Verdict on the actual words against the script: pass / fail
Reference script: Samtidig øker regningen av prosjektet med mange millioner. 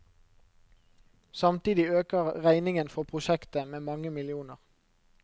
fail